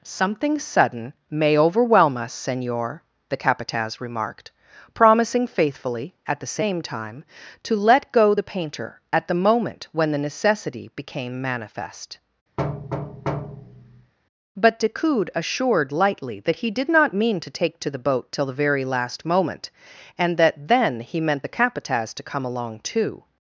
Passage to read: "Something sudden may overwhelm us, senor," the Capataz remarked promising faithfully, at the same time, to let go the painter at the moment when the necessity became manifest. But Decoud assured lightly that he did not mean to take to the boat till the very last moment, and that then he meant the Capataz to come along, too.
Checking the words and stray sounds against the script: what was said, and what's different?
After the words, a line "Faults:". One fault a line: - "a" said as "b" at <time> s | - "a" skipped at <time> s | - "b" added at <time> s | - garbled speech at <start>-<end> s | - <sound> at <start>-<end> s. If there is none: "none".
"Something sudden may overwhelm us, senor," the Capataz remarked promising faithfully, at the same time, to let go the painter at the moment when the necessity became manifest. But Decoud assured lightly that he did not mean to take to the boat till the very last moment, and that then he meant the Capataz to come along, too.
Faults:
- thud at 12.6-14.1 s